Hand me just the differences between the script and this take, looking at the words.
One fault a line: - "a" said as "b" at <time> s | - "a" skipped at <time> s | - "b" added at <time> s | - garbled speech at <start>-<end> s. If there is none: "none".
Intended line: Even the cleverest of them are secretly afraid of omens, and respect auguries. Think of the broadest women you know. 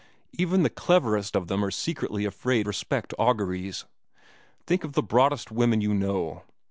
- "of omens and" skipped at 2.7 s